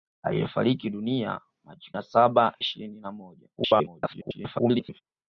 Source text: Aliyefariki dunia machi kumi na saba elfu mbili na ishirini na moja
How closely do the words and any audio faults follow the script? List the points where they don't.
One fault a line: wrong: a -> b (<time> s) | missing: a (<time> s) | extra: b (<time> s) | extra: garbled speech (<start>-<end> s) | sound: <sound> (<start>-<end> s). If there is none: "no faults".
missing: kumi (1.9 s)
missing: elfu mbili na (2.6 s)
extra: garbled speech (3.6-5.0 s)